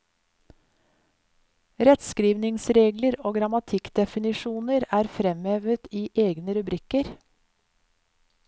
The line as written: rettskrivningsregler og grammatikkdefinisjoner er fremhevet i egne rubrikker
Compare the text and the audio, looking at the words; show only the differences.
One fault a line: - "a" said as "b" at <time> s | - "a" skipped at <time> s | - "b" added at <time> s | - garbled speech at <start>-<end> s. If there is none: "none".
none